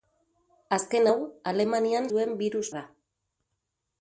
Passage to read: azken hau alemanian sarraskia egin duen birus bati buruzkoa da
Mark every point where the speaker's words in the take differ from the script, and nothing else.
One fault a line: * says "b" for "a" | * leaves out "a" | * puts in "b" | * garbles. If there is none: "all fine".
* leaves out "sarraskia egin"
* leaves out "bati buruzkoa"